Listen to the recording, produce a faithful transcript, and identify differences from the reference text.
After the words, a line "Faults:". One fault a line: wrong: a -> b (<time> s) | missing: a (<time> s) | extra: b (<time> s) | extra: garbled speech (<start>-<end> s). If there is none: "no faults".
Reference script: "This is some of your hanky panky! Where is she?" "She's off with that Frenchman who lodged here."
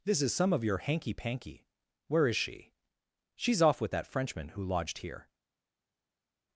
"This is some of your hanky panky! Where is she?" "She's off with that Frenchman who lodged here."
Faults:
no faults